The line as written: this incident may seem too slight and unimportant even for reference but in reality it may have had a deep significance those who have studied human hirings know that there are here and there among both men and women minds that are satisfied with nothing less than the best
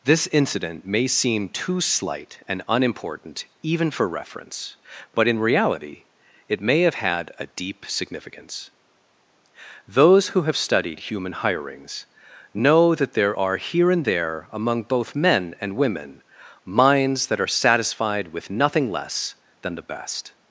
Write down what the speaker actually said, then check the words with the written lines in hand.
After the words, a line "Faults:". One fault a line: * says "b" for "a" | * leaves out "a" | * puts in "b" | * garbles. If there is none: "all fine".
this incident may seem too slight and unimportant even for reference but in reality it may have had a deep significance those who have studied human hirings know that there are here and there among both men and women minds that are satisfied with nothing less than the best
Faults:
all fine